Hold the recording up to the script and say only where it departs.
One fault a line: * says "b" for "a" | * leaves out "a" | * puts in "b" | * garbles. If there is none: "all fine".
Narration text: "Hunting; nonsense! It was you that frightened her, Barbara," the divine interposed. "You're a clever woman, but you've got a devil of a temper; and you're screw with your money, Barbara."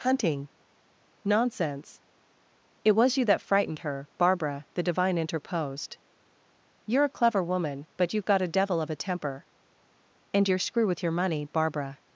all fine